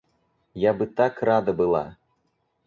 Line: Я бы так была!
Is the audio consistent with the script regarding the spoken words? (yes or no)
no